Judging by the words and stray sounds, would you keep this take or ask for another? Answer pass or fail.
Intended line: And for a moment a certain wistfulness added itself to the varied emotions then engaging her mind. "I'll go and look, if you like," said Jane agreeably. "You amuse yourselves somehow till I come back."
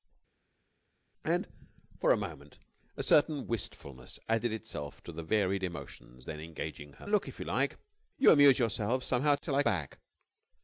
fail